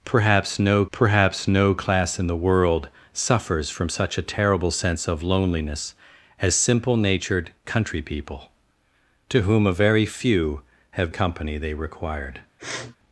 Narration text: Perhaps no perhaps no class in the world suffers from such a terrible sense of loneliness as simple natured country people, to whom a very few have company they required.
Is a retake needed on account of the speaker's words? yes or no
no